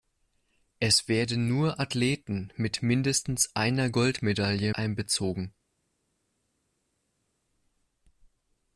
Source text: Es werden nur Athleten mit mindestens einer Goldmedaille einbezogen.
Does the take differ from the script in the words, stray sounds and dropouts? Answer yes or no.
no